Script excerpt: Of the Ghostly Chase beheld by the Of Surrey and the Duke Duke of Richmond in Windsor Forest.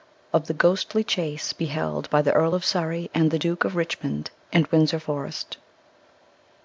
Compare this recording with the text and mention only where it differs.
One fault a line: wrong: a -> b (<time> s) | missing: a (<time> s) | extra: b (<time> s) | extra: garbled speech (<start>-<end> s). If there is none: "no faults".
extra: Earl (2.3 s)
missing: Duke (3.6 s)